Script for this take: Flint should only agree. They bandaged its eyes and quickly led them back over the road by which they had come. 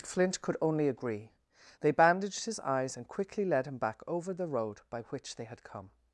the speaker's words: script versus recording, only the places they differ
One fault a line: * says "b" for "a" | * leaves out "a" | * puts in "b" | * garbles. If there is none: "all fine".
* says "could" for "should"
* says "his" for "its"
* says "him" for "them"